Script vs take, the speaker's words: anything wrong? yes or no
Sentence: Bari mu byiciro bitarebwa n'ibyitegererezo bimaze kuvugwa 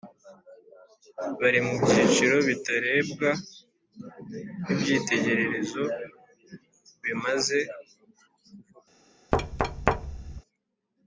no